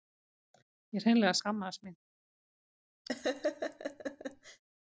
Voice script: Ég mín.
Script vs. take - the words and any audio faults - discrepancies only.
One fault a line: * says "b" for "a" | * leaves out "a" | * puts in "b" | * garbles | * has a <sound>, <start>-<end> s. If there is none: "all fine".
* puts in "hreinlega skammaðist"
* has a laugh, 3.1-4.6 s